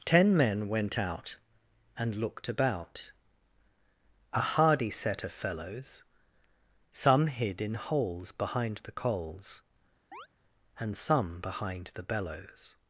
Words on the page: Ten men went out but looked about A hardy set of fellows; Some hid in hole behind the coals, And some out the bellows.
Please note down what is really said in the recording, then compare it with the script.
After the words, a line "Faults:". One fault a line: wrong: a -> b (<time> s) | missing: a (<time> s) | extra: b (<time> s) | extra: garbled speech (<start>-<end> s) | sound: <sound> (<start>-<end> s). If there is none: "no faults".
Ten men went out and looked about A hardy set of fellows; Some hid in holes behind the coals, And some behind the bellows.
Faults:
wrong: but -> and (2.0 s)
wrong: hole -> holes (7.7 s)
sound: chirp (10.1-10.3 s)
wrong: out -> behind (11.4 s)